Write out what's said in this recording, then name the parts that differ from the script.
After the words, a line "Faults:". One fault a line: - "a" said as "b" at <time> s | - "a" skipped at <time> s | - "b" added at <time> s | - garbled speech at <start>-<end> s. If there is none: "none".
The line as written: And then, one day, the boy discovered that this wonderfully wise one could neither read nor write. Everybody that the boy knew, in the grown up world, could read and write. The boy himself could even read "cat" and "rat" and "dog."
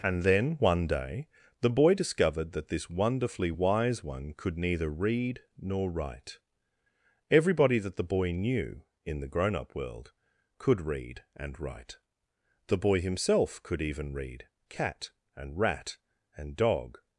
And then, one day, the boy discovered that this wonderfully wise one could neither read nor write. Everybody that the boy knew, in the grown up world, could read and write. The boy himself could even read "cat" and "rat" and "dog."
Faults:
none